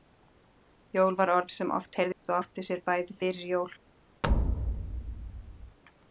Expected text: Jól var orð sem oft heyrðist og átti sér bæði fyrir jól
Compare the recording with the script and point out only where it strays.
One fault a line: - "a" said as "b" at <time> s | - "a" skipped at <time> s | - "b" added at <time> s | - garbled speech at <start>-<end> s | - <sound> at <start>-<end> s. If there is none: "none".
- dropout at 2.1-2.2 s
- thud at 4.2-5.8 s